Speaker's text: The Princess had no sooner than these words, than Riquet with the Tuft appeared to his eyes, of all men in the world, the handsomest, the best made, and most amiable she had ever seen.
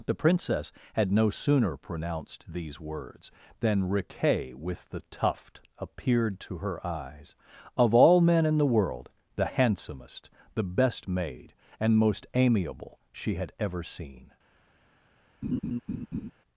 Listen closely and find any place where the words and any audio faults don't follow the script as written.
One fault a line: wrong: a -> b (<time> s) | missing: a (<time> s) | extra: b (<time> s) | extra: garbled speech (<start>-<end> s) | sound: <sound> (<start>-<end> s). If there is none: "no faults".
wrong: than -> pronounced (1.8 s)
wrong: his -> her (6.6 s)
sound: laugh (15.4-16.3 s)